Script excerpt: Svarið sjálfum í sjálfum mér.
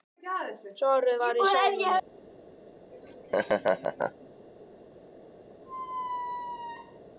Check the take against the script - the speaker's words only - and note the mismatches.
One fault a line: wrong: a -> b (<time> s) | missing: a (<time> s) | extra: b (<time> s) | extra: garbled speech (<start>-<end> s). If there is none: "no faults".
wrong: sjálfum -> var (1.2 s)